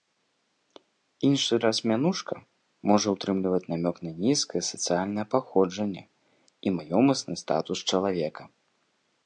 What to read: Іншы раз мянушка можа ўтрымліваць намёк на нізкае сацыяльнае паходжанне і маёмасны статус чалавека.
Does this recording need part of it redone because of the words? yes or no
no